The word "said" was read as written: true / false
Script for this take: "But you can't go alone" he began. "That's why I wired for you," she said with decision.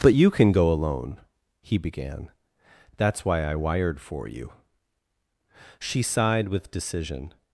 false